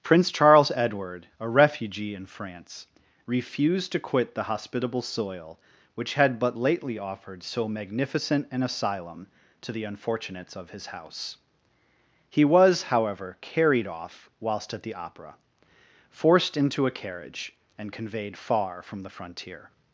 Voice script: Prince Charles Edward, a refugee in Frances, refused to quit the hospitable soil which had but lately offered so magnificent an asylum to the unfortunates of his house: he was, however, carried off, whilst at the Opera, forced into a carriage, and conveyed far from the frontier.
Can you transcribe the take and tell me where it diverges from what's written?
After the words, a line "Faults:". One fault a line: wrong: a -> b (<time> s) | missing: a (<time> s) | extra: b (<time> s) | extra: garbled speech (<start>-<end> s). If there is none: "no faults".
Prince Charles Edward, a refugee in France, refused to quit the hospitable soil which had but lately offered so magnificent an asylum to the unfortunates of his house: he was, however, carried off, whilst at the Opera, forced into a carriage, and conveyed far from the frontier.
Faults:
wrong: Frances -> France (2.2 s)